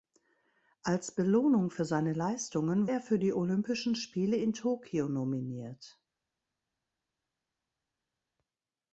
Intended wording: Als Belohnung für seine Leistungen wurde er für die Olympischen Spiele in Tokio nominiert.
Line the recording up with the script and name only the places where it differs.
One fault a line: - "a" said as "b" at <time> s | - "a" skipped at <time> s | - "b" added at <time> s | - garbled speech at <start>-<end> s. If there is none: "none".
- "wurde" skipped at 2.9 s